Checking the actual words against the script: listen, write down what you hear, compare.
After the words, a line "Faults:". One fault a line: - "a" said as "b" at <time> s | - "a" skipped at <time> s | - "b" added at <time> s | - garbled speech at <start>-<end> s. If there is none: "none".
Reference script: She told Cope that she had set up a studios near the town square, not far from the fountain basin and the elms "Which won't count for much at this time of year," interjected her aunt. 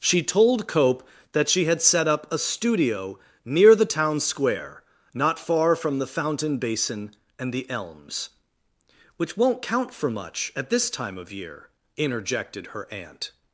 She told Cope that she had set up a studio near the town square, not far from the fountain basin and the elms "Which won't count for much at this time of year," interjected her aunt.
Faults:
- "studios" said as "studio" at 2.4 s